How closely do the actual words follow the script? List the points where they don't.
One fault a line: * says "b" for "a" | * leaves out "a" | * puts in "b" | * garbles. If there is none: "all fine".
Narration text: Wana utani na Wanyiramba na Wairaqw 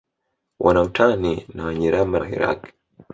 * leaves out "na"